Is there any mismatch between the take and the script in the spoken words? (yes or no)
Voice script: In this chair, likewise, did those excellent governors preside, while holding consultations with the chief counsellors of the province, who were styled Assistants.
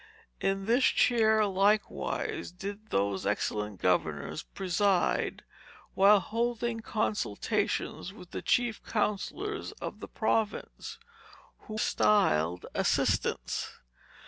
yes